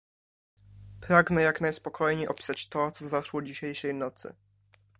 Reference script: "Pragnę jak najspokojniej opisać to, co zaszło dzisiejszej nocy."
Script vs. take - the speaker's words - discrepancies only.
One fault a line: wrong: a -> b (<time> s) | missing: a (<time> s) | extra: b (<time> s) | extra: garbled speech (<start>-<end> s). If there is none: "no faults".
no faults